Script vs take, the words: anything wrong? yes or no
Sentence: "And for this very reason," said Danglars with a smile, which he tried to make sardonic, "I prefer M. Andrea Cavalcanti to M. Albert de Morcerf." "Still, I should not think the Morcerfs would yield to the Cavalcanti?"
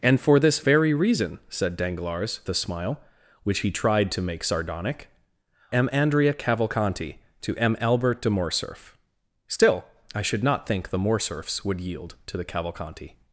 yes